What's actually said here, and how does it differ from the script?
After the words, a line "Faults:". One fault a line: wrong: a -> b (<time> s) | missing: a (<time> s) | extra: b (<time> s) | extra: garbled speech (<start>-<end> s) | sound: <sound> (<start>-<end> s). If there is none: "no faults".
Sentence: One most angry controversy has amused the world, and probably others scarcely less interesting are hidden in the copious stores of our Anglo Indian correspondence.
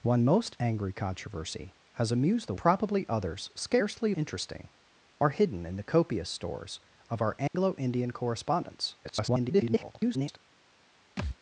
One most angry controversy has amused the probably others scarcely interesting are hidden in the copious stores of our Anglo Indian correspondence. [garbled]
Faults:
missing: world and (2.5 s)
missing: less (4.1 s)
sound: dropout (7.5-7.5 s)
extra: garbled speech (9.0-10.4 s)
sound: thud (11.2-11.4 s)